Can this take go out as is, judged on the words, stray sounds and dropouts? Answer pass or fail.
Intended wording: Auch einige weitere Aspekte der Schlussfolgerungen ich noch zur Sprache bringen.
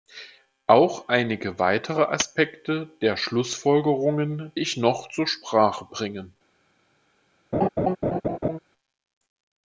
fail